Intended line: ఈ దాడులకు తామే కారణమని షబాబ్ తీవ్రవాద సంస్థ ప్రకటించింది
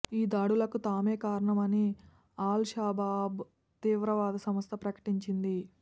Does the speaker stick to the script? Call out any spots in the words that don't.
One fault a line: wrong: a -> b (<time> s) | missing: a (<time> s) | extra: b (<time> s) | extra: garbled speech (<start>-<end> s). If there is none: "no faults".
extra: అల్ (2.4 s)